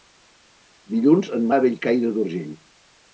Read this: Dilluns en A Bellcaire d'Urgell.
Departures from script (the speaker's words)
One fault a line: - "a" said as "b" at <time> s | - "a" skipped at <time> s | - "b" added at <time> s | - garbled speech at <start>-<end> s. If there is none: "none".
none